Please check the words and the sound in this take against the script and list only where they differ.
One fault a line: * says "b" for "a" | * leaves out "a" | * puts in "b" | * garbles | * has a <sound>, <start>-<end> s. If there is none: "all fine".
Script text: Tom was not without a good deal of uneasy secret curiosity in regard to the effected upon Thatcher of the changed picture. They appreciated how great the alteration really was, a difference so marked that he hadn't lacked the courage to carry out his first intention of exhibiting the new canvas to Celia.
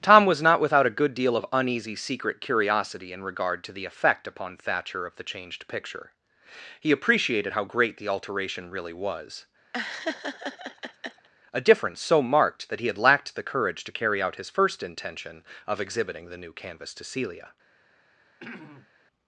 * says "effect" for "effected"
* says "He" for "They"
* has a laugh, 9.7-11.3 s
* says "had" for "hadn't"
* has a throat clearing, 18.4-18.9 s